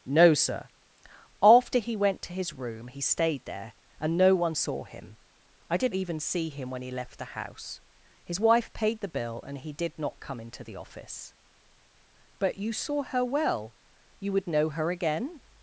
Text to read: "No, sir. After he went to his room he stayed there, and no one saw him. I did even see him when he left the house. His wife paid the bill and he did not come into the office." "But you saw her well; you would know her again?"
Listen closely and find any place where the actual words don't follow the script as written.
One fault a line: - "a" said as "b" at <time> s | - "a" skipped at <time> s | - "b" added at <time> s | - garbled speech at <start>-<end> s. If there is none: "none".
none